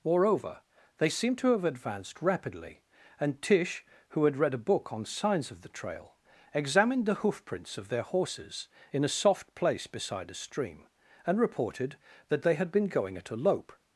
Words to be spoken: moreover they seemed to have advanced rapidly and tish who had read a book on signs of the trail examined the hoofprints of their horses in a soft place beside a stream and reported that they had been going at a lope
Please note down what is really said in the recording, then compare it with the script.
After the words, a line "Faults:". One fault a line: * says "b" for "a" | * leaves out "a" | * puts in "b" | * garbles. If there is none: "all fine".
moreover they seemed to have advanced rapidly and tish who had read a book on signs of the trail examined the hoofprints of their horses in a soft place beside a stream and reported that they had been going at a lope
Faults:
all fine